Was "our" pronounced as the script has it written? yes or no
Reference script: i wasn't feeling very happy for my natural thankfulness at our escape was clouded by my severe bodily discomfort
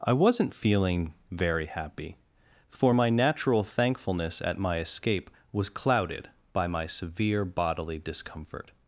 no